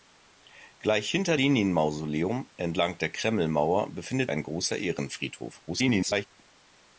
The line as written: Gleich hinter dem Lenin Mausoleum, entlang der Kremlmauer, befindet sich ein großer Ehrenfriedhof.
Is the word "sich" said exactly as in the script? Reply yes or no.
no